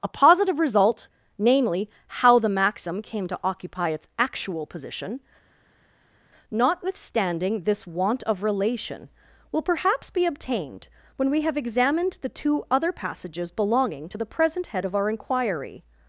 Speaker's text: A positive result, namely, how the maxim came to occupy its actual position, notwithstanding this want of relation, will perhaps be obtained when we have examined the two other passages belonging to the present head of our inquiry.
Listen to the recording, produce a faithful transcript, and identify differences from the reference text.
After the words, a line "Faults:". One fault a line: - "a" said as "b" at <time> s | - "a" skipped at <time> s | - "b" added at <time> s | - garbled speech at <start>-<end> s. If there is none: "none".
A positive result, namely, how the maxim came to occupy its actual position, notwithstanding this want of relation, will perhaps be obtained when we have examined the two other passages belonging to the present head of our inquiry.
Faults:
none